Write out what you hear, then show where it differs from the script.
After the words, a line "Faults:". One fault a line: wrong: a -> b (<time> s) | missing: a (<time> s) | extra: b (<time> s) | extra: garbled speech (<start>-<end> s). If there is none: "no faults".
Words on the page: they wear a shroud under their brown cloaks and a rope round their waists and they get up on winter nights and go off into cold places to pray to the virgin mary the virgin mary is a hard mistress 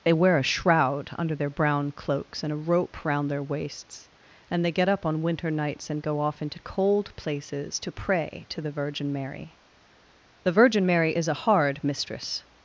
they wear a shroud under their brown cloaks and a rope round their waists and they get up on winter nights and go off into cold places to pray to the virgin mary the virgin mary is a hard mistress
Faults:
no faults